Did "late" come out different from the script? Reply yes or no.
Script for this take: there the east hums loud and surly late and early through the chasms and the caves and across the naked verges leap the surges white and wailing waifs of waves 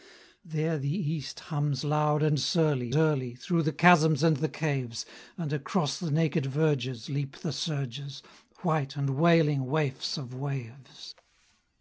yes